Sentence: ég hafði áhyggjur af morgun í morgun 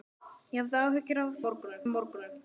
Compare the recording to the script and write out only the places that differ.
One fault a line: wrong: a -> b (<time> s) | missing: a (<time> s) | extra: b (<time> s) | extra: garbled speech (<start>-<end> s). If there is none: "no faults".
no faults